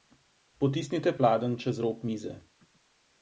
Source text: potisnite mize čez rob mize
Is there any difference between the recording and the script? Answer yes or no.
yes